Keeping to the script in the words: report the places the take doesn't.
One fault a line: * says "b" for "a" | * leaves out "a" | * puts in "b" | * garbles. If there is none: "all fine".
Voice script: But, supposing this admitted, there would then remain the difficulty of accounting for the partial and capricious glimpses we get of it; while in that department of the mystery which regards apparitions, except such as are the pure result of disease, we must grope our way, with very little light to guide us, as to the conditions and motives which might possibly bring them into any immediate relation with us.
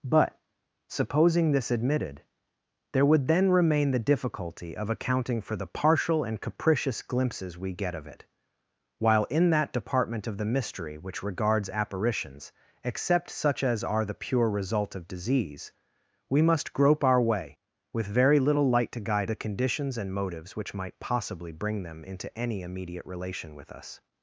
* leaves out "us as to"